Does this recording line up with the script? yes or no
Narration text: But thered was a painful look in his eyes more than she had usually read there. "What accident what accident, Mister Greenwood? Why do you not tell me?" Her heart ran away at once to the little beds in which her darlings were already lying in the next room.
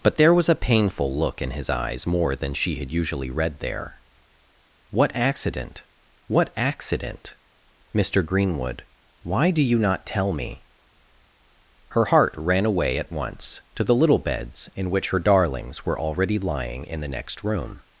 no